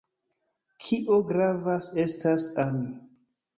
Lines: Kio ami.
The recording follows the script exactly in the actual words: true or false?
false